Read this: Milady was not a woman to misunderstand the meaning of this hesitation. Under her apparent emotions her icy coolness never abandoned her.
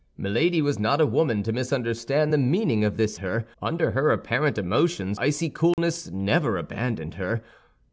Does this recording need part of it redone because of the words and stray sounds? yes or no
yes